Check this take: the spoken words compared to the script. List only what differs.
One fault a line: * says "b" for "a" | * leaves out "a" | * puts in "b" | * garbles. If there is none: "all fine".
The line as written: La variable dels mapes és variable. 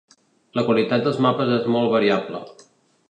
* says "qualitat" for "variable"
* puts in "molt"